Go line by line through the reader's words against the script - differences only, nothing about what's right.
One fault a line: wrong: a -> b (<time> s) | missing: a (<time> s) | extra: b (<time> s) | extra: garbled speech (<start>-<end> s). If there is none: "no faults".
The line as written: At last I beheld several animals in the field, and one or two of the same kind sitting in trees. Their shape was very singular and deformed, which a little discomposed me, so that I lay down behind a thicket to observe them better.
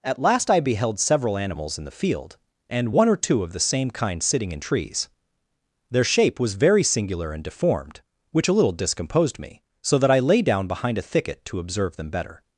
no faults